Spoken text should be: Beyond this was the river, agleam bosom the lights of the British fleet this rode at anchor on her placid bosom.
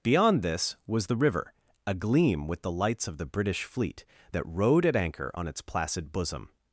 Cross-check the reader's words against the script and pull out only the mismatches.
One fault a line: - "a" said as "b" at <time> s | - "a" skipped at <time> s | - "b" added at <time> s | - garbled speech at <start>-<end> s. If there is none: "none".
- "bosom" said as "with" at 2.5 s
- "this" said as "that" at 4.3 s
- "her" said as "its" at 5.5 s